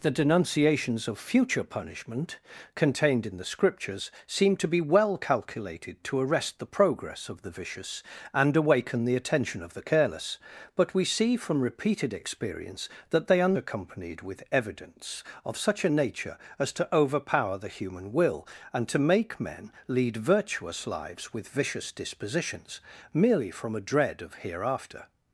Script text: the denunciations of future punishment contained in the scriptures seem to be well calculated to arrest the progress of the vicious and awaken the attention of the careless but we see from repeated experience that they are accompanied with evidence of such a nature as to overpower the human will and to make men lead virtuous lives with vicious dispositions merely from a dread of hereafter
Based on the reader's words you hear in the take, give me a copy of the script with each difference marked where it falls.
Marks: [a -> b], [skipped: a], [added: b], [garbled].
the denunciations of future punishment contained in the scriptures seem to be well calculated to arrest the progress of the vicious and awaken the attention of the careless but we see from repeated experience that they are accompanied with evidence of such a nature as to overpower the human will and to make men lead virtuous lives with vicious dispositions merely from a dread of hereafter